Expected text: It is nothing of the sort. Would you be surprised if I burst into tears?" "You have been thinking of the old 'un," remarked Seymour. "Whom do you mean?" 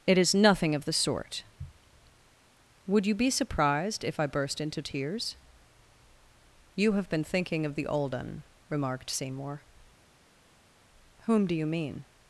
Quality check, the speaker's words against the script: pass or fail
pass